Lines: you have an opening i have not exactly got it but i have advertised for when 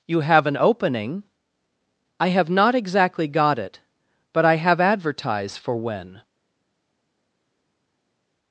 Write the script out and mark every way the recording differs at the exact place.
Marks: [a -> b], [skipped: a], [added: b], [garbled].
you have an opening i have not exactly got it but i have advertised for when